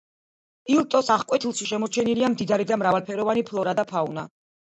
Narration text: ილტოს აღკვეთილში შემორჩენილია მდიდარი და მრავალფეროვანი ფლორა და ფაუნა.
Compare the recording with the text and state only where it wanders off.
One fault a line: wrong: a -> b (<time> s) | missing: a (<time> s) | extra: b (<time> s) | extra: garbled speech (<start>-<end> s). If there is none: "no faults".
no faults